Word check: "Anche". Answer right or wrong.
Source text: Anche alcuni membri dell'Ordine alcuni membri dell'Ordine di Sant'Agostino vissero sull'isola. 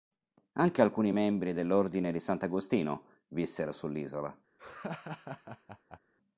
right